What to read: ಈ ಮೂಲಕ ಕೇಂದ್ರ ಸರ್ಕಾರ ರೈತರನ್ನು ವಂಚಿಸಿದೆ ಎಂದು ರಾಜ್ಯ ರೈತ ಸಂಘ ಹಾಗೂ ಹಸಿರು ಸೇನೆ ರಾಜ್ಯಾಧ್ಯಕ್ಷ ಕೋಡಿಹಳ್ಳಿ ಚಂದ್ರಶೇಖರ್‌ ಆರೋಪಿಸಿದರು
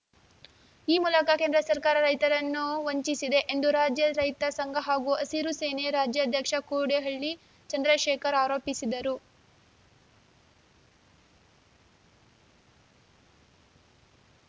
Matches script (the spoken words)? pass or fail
pass